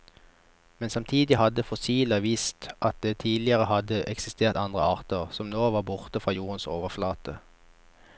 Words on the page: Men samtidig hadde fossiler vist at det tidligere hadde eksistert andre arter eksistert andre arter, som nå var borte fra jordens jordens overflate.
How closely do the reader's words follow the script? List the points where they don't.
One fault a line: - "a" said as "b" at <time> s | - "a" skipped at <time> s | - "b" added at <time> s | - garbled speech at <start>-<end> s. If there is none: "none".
- "eksistert andre arter" skipped at 5.3 s
- "jordens" skipped at 6.7 s